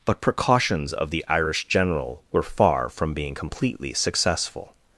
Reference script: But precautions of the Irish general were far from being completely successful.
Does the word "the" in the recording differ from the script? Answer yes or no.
no